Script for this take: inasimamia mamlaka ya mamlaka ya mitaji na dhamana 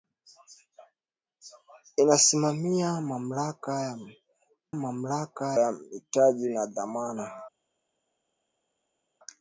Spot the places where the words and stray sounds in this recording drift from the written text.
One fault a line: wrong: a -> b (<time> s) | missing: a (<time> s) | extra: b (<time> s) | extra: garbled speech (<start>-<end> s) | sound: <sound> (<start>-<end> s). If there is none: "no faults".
no faults